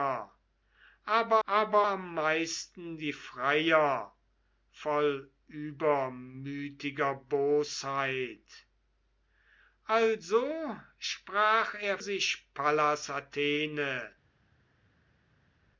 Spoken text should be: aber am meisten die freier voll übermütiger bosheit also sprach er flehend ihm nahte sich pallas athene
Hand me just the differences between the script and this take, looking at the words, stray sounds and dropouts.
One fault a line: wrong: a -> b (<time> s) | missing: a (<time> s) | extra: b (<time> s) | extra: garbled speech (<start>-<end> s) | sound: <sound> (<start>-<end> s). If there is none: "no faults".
extra: aber (1.5 s)
missing: flehend ihm nahte (12.0 s)